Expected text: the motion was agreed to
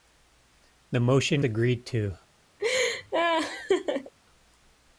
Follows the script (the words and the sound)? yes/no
no